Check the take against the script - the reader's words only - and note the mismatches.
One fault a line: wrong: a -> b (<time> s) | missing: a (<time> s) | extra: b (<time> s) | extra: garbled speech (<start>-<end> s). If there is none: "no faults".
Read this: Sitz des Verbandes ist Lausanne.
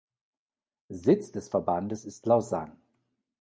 no faults